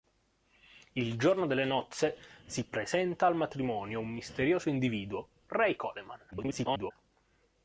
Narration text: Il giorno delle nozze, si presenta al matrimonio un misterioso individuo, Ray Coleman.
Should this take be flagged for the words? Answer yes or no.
yes